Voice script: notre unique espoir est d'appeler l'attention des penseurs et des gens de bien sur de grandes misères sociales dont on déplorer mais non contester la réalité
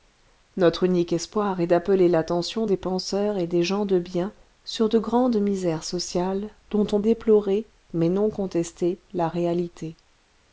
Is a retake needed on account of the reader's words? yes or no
no